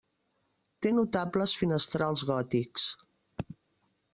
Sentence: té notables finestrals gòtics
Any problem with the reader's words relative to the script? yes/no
no